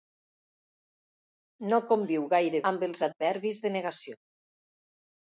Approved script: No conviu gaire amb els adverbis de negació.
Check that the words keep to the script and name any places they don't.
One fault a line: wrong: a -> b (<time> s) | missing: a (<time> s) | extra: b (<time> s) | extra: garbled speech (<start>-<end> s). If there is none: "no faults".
no faults